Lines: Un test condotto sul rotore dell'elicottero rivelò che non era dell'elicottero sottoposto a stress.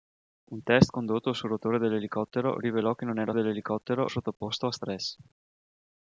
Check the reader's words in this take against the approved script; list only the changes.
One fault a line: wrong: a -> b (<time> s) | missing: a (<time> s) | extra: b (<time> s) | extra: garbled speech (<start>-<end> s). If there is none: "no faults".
no faults